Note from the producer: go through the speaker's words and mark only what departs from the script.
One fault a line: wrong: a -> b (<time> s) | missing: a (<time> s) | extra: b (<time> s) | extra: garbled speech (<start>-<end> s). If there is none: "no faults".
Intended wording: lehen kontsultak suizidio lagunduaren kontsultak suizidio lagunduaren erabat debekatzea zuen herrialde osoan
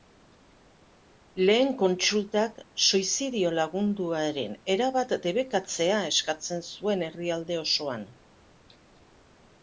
missing: kontsultak suizidio lagunduaren (4.5 s)
extra: eskatzen (6.1 s)